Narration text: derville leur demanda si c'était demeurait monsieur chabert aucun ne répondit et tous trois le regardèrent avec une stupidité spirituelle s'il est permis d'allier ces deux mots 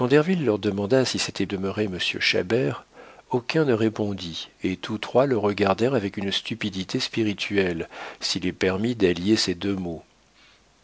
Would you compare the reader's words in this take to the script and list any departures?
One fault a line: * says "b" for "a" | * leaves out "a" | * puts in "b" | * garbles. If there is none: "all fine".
all fine